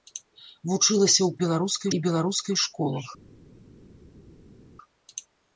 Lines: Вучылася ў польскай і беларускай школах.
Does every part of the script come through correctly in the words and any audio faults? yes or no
no